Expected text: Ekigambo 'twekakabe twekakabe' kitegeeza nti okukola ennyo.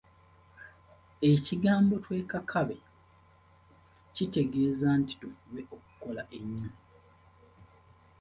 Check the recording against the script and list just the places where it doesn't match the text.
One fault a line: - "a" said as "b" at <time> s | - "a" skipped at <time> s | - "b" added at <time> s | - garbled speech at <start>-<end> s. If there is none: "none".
- "twekakabe" skipped at 2.8 s
- "tufube" added at 5.2 s